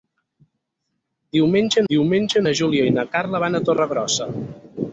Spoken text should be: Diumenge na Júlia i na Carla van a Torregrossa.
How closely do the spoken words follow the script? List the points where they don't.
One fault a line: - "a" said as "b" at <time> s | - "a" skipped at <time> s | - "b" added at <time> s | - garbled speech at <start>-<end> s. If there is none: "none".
- "diumenge" added at 1.9 s